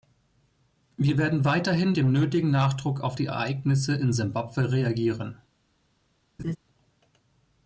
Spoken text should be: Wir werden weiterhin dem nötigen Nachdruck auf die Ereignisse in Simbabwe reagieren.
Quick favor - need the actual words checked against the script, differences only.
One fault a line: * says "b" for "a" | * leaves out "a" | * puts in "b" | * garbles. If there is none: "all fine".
all fine